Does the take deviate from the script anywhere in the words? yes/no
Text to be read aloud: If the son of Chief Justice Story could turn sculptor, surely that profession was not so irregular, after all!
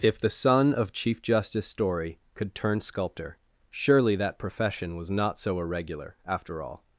no